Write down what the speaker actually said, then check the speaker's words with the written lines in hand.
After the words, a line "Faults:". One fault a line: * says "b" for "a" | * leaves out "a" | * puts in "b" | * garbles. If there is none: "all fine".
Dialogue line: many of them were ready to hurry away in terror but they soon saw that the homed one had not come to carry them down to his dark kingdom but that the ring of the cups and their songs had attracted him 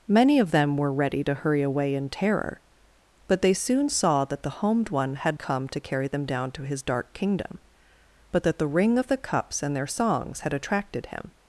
many of them were ready to hurry away in terror but they soon saw that the homed one had come to carry them down to his dark kingdom but that the ring of the cups and their songs had attracted him
Faults:
* leaves out "not"